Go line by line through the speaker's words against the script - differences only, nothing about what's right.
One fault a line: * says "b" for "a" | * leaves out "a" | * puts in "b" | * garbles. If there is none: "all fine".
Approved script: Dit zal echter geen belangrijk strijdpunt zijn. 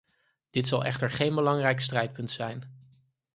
all fine